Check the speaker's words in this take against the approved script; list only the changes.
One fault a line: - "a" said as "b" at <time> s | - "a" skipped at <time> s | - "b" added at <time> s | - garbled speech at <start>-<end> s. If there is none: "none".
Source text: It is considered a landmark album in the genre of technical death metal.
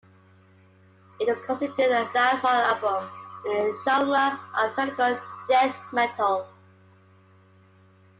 none